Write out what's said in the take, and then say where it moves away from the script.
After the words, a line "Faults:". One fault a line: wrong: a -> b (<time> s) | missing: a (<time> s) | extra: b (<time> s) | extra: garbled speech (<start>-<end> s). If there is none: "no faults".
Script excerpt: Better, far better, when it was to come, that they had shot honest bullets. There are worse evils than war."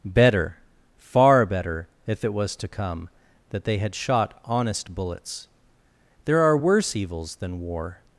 Better, far better, if it was to come, that they had shot honest bullets. There are worse evils than war."
Faults:
wrong: when -> if (2.1 s)